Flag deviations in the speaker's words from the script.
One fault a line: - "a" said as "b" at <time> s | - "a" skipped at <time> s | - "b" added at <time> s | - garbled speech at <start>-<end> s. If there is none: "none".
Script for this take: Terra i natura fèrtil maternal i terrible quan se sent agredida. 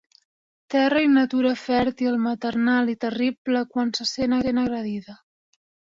- "sent" added at 4.4 s